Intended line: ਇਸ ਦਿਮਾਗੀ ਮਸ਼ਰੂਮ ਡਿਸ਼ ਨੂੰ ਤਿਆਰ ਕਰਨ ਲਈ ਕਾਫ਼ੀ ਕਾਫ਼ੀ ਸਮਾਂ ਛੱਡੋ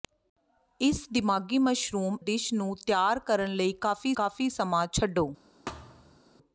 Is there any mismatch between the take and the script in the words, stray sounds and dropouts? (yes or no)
yes